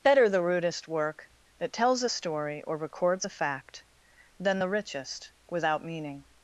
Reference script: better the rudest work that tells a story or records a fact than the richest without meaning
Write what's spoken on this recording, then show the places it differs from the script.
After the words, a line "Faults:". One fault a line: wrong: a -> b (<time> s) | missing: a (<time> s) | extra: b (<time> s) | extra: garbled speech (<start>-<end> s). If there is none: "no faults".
better the rudest work that tells a story or records a fact than the richest without meaning
Faults:
no faults